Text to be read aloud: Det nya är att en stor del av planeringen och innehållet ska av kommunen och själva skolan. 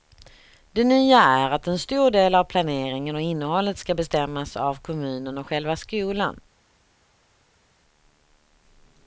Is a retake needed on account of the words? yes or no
yes